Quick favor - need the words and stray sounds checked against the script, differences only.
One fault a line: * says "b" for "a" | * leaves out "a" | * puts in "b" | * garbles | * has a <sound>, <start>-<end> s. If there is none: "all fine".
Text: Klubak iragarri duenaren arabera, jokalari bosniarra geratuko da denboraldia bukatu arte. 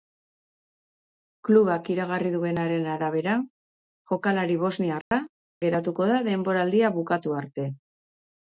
* has a dropout, 5.0-5.1 s